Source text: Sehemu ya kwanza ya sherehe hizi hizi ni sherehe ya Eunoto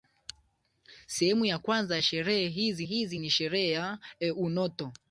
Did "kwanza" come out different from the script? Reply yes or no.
no